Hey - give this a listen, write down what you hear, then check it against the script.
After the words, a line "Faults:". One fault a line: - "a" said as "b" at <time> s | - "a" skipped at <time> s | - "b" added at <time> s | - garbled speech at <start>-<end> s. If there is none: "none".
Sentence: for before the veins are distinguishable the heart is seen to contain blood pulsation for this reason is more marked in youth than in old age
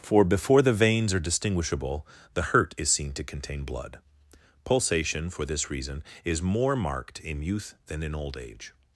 for before the veins are distinguishable the hurt is seen to contain blood pulsation for this reason is more marked in youth than in old age
Faults:
- "heart" said as "hurt" at 2.5 s